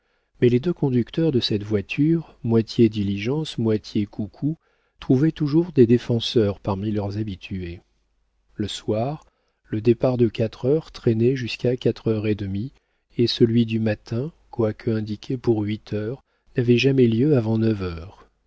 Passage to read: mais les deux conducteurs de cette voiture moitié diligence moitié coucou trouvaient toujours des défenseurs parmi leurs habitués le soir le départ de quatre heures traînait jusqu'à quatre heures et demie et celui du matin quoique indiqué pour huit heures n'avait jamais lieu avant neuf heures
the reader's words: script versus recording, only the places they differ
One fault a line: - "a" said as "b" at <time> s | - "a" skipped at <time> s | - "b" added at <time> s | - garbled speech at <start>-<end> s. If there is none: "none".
none